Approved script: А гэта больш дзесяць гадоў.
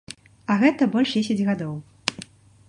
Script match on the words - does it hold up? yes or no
yes